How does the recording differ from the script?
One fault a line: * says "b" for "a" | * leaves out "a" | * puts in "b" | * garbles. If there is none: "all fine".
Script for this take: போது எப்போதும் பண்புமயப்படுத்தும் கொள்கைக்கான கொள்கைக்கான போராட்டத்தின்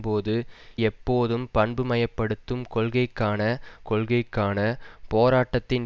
all fine